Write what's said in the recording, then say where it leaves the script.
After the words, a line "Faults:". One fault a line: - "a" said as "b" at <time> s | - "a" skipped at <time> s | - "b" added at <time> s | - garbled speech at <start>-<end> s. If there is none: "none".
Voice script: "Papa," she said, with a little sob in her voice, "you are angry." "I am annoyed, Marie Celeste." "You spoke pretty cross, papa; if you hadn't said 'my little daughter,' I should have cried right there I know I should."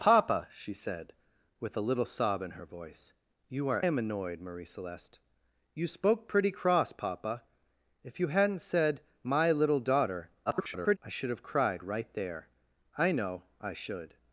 "Papa," she said, with a little sob in her voice, "you are am annoyed, Marie Celeste." "You spoke pretty cross, papa; if you hadn't said 'my little daughter,' [garbled] I should have cried right there I know I should."
Faults:
- "angry I" skipped at 3.9 s
- garbled speech at 10.5-11.0 s